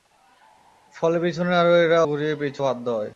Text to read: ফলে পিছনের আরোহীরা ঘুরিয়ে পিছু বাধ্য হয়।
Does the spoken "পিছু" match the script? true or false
true